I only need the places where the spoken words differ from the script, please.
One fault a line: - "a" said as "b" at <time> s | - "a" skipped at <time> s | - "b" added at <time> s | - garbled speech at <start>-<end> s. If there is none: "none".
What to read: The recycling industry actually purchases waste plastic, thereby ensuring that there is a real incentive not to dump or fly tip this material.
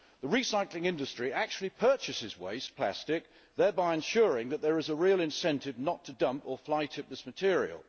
none